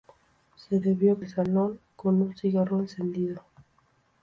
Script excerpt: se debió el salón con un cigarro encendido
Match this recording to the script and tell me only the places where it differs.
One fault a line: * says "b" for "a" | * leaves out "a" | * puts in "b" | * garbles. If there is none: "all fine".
all fine